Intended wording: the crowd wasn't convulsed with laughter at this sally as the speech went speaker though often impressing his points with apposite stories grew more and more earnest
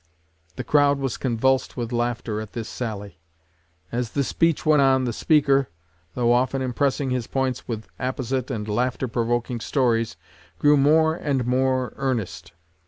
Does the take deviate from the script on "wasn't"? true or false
true